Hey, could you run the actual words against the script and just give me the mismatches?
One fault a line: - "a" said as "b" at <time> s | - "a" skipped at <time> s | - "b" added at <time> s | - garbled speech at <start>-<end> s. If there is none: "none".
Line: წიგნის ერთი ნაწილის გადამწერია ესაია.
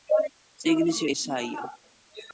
- "ერთი ნაწილის გადამწერია" skipped at 1.0 s